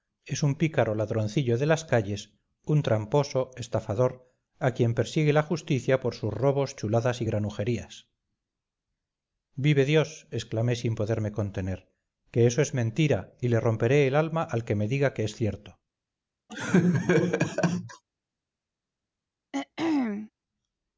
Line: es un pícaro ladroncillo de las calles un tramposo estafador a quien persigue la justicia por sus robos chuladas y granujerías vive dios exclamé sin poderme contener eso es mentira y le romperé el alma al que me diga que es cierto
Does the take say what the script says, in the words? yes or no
no